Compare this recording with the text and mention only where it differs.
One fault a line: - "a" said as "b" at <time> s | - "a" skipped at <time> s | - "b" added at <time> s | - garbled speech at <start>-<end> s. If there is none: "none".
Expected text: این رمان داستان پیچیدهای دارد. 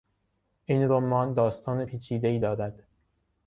none